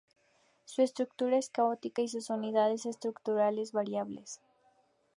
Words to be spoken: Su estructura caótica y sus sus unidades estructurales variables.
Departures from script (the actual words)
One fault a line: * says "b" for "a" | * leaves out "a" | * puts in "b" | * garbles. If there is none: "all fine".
* puts in "es"
* leaves out "sus"